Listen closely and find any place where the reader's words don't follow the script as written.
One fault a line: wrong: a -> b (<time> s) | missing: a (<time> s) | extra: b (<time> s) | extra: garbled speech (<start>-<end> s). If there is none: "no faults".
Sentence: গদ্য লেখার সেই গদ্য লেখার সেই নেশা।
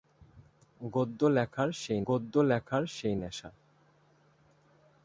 no faults